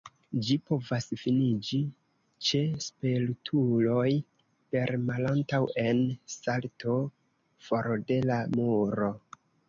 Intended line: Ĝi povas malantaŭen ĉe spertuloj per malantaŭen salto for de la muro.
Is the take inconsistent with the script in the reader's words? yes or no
yes